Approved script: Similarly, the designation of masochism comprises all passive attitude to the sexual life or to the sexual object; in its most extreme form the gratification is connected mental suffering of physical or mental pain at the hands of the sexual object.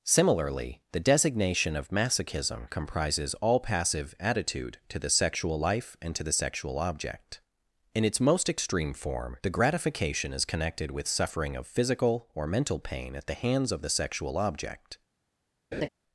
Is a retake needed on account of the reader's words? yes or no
yes